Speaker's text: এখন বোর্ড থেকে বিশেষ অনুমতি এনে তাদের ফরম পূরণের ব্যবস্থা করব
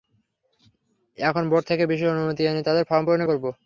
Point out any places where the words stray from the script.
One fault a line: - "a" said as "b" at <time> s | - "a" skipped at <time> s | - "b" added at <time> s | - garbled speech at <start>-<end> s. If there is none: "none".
- "ব্যবস্থা" skipped at 3.3 s